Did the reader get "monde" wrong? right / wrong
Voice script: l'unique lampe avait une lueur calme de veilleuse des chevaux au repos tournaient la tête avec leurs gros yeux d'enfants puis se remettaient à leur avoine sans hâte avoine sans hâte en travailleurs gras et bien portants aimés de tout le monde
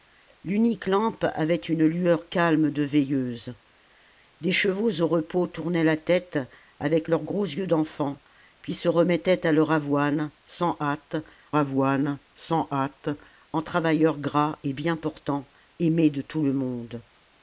right